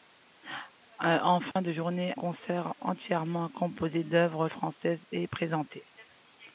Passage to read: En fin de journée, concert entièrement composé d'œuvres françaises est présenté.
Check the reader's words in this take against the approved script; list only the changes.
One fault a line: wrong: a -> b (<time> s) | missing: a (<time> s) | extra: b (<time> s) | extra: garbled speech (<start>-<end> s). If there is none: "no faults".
no faults